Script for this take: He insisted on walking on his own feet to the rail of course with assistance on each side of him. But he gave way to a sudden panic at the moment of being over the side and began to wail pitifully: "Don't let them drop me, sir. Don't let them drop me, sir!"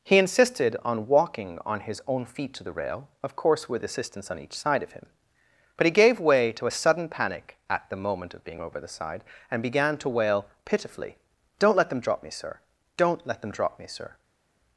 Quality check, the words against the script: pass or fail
pass